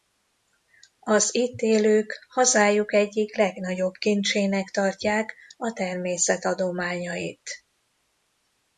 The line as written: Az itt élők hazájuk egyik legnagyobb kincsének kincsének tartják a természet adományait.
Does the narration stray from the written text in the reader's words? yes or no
yes